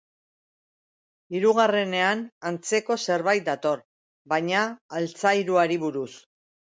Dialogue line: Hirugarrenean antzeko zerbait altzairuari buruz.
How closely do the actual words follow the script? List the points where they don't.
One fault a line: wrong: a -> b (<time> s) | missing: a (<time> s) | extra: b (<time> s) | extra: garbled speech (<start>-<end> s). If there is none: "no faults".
extra: dator baina (3.5 s)